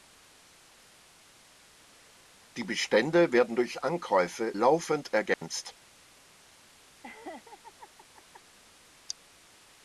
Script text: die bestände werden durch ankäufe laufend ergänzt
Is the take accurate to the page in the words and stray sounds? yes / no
no